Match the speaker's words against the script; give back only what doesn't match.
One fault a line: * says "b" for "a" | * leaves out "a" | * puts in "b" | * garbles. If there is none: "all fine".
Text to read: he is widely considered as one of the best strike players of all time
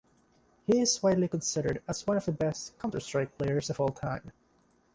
* puts in "counter"